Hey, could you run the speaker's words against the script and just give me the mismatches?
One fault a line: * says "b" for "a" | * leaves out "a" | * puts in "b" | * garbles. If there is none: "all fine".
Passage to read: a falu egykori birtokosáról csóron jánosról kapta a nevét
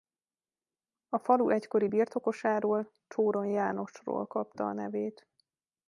all fine